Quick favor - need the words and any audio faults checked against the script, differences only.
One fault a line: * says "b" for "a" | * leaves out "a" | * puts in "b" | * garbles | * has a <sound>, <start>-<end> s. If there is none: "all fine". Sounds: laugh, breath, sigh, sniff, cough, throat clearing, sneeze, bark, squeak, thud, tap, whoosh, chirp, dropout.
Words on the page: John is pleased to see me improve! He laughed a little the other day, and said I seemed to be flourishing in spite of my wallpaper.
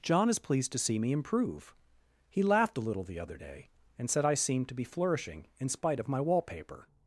all fine